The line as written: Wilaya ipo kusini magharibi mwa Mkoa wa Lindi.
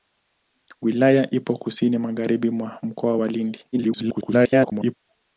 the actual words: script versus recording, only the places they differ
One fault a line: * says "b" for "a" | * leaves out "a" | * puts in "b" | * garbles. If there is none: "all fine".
* garbles